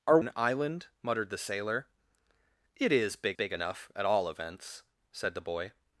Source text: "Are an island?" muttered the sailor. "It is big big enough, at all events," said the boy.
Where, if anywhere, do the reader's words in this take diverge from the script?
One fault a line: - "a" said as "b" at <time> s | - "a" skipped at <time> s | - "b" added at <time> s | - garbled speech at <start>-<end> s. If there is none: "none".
none